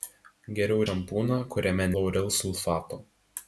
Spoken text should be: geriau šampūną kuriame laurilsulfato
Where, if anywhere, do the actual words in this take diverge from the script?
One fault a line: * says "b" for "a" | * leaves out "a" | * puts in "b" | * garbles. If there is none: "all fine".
all fine